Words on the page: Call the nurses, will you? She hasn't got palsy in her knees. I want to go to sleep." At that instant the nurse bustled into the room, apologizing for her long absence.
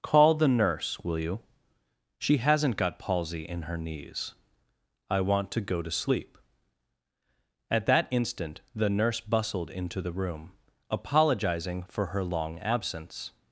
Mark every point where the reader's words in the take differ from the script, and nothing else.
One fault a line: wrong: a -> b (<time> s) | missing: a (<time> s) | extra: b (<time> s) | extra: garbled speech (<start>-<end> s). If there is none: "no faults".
wrong: nurses -> nurse (0.5 s)